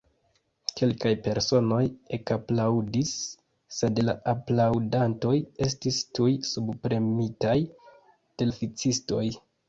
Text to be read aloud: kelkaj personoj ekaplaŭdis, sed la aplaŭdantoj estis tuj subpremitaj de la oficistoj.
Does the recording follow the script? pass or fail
fail